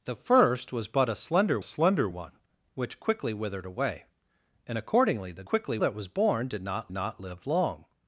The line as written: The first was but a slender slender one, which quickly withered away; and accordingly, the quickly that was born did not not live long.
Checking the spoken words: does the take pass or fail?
pass